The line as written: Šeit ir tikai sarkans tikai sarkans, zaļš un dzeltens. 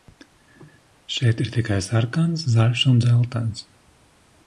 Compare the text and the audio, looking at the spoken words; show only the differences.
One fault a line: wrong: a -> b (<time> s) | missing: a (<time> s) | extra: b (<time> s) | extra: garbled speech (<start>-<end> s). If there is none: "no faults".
missing: tikai sarkans (2.5 s)